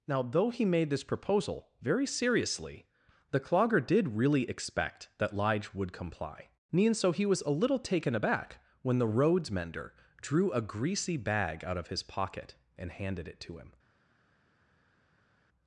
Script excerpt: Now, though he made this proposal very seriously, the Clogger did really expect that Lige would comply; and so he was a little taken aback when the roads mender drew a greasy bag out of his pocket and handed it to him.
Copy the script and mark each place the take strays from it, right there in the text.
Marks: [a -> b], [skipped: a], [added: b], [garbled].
Now, though he made this proposal very seriously, the Clogger did really expect that Lige would comply; and so he was a little taken aback when the roads mender drew a greasy bag out of his pocket and handed it to him.